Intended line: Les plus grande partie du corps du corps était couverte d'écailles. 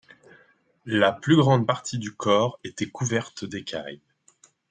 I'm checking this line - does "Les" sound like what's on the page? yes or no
no